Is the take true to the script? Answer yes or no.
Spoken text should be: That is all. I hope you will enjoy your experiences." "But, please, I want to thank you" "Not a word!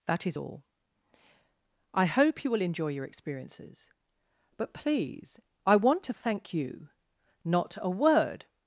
yes